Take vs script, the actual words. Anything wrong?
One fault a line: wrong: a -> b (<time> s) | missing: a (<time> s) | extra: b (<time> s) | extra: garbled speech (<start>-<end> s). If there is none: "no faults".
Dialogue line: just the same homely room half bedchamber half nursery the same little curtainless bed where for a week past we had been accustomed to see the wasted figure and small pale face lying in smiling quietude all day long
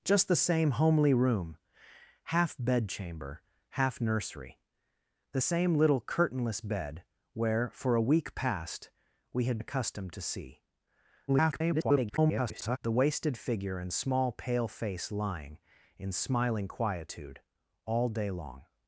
missing: been (9.6 s)
extra: garbled speech (11.3-12.8 s)